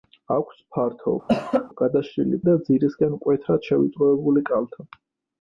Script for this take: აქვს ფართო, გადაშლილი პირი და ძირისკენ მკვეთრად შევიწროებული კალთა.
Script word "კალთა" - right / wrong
right